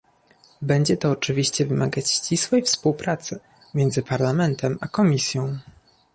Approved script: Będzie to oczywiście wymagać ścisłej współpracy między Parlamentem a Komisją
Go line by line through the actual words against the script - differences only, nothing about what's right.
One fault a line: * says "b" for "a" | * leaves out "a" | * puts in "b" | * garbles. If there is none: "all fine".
all fine